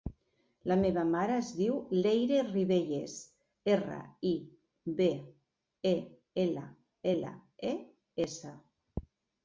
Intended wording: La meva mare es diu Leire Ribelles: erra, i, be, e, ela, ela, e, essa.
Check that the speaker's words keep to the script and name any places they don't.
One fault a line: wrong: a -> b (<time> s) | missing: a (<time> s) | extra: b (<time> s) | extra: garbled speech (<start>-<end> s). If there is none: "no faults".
no faults